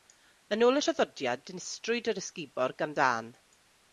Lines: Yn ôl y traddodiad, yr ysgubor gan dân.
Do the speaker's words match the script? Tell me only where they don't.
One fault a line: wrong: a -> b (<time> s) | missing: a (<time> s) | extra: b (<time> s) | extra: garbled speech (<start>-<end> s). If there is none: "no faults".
extra: dinistriwyd (1.5 s)